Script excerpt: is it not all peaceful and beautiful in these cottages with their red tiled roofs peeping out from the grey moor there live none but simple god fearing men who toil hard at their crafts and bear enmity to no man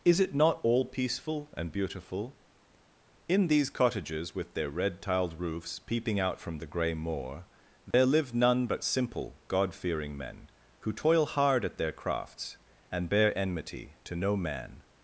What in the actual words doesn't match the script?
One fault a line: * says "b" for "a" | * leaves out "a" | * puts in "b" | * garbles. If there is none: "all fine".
all fine